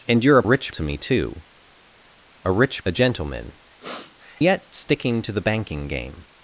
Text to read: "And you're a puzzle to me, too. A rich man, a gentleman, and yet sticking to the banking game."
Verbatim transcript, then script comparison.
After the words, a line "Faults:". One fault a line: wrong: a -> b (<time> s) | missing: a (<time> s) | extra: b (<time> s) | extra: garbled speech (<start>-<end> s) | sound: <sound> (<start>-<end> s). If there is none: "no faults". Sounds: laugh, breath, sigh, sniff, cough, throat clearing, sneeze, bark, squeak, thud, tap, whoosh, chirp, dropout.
"And you're a rich to me, too. A rich a gentleman, yet sticking to the banking game."
Faults:
wrong: puzzle -> rich (0.4 s)
missing: man (2.8 s)
missing: and (3.5 s)
sound: sniff (3.8-4.2 s)